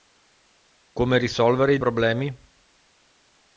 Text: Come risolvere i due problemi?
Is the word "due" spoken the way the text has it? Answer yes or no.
no